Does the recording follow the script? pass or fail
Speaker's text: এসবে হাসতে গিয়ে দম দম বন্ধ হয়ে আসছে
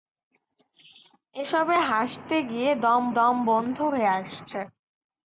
pass